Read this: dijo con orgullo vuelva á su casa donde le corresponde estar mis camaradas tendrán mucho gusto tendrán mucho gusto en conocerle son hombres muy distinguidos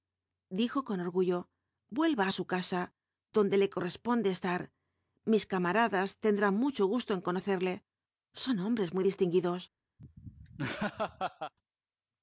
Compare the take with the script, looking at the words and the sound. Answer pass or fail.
fail